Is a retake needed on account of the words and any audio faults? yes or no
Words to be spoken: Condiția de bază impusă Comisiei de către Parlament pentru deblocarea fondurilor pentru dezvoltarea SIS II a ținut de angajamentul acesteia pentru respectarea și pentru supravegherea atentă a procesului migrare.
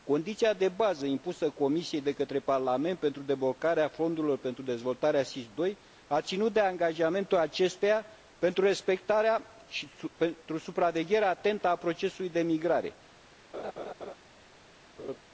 yes